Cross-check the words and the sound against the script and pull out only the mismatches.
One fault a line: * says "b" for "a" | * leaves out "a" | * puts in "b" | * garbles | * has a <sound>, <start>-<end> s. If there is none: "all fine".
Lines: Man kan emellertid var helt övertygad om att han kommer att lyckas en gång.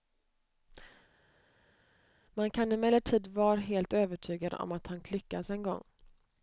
* leaves out "kommer"